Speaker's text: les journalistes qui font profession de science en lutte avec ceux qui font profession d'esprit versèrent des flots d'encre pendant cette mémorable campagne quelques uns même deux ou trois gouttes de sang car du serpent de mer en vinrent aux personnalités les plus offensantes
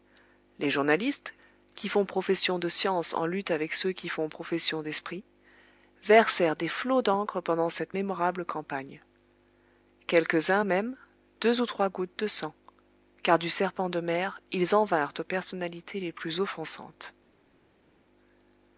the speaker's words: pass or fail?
fail